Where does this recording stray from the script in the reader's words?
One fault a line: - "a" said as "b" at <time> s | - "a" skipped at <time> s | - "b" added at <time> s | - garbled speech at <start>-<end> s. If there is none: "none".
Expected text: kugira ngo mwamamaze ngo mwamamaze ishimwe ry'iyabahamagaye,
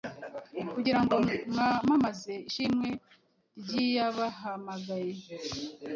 - "ngo mwamamaze" skipped at 2.3 s